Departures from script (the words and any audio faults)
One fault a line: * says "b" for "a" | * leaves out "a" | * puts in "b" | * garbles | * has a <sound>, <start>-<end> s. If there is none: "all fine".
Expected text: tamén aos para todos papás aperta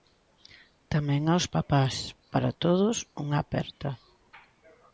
* puts in "papás"
* says "unha" for "papás"